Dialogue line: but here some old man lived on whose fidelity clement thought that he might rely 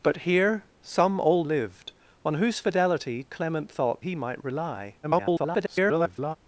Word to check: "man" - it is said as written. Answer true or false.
false